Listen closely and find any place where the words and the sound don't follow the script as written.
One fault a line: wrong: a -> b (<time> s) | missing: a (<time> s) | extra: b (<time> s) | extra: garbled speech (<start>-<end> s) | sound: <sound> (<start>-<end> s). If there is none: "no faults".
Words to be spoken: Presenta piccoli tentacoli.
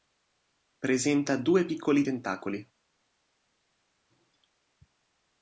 extra: due (1.4 s)